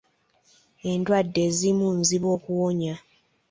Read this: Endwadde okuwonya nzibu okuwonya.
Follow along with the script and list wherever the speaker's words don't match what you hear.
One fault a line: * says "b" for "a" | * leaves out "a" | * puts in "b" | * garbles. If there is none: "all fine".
* says "ezimu" for "okuwonya"